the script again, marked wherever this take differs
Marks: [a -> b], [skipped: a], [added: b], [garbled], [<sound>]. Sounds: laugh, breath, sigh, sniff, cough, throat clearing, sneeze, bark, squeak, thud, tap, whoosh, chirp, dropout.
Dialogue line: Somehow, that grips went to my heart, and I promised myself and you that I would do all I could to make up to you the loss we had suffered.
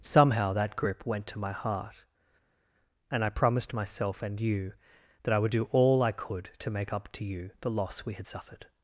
Somehow, that [grips -> grip] went to my heart, and I promised myself and you that I would do all I could to make up to you the loss we had suffered.